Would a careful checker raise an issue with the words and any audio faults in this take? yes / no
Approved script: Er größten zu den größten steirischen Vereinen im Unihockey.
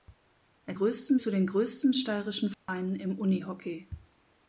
yes